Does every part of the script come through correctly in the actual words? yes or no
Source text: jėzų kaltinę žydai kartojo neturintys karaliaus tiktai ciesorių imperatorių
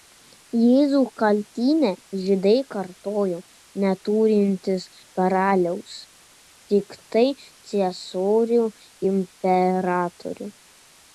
yes